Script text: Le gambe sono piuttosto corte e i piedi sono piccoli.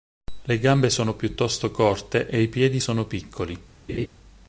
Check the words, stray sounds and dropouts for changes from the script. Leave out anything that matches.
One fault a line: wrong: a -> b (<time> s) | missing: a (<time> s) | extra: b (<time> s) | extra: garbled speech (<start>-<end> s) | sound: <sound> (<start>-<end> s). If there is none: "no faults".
sound: laugh (3.9-4.1 s)